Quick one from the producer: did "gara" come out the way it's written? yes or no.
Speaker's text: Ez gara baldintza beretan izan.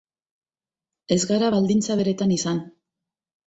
yes